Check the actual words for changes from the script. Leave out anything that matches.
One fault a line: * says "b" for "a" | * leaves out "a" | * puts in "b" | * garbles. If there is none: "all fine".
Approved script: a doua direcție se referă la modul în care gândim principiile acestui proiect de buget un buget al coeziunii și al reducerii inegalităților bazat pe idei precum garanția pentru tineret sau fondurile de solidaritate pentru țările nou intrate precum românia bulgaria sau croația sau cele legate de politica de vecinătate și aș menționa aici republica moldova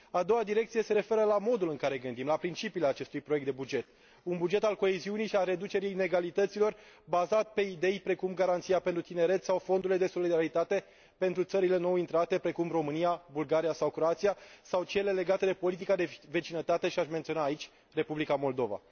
* puts in "la"